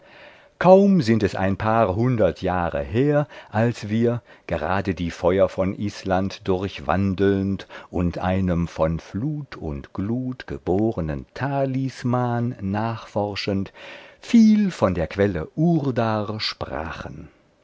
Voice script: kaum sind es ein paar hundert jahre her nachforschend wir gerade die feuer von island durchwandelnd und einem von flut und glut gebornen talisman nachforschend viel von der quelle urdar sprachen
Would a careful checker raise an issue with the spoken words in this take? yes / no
yes